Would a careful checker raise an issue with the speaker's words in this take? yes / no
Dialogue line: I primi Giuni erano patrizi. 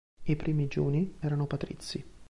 no